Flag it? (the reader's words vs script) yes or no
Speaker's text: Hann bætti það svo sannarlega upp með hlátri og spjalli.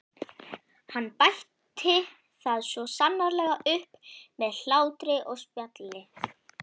no